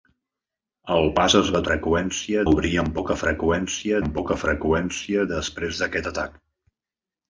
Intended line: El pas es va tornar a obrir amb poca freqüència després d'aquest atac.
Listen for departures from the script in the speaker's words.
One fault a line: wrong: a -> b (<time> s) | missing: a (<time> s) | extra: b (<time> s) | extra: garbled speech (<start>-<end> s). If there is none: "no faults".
wrong: tornar -> freqüència (1.7 s)
extra: amb poca freqüència (4.0 s)